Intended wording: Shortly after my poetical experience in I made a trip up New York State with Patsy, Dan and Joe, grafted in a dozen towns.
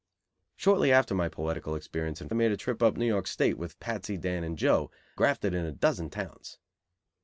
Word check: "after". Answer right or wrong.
right